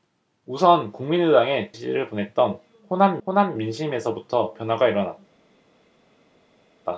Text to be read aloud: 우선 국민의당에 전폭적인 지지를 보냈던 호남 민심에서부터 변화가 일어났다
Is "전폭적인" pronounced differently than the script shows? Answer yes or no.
yes